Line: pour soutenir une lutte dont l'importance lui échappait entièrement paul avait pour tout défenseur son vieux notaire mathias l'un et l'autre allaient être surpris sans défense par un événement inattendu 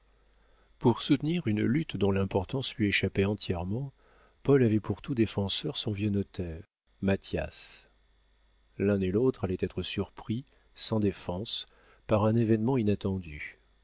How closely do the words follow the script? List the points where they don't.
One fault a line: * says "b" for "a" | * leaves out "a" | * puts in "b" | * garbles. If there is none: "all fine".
all fine